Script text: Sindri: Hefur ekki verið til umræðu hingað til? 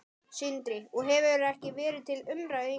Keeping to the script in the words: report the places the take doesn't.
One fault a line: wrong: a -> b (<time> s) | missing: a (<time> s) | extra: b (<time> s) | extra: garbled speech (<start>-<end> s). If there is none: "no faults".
extra: Og (1.0 s)